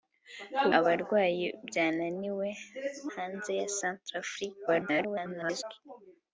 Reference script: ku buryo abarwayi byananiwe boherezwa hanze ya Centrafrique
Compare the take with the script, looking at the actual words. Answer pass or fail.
fail